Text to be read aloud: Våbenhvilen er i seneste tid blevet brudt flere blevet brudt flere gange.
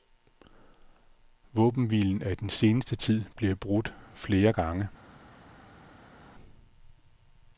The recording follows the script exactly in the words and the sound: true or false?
false